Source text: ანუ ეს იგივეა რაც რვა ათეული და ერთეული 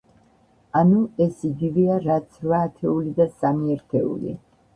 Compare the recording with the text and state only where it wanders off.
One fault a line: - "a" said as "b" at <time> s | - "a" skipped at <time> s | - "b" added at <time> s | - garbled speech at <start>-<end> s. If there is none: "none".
- "სამი" added at 3.4 s